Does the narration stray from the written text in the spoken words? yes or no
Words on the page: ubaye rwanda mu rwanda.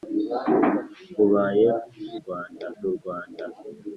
no